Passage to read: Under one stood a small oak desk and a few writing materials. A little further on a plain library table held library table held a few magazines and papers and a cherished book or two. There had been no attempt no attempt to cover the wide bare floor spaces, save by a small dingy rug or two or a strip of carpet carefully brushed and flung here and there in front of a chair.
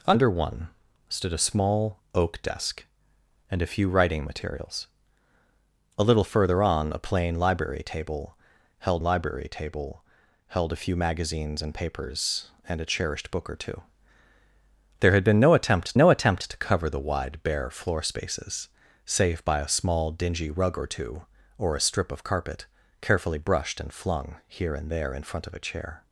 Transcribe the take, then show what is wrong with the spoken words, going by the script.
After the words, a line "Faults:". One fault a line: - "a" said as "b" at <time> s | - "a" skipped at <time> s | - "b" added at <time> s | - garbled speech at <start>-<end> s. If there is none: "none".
Under one stood a small oak desk and a few writing materials. A little further on a plain library table held library table held a few magazines and papers and a cherished book or two. There had been no attempt no attempt to cover the wide bare floor spaces, save by a small dingy rug or two or a strip of carpet carefully brushed and flung here and there in front of a chair.
Faults:
none